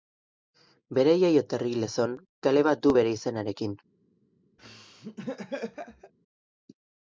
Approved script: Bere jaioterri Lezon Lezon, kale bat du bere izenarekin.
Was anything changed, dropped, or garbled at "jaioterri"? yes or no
no